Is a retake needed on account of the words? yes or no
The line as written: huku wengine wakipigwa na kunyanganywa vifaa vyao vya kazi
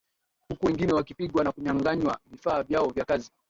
no